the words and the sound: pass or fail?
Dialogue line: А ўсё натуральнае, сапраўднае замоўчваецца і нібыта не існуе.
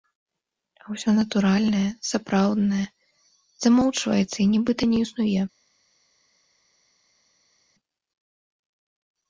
pass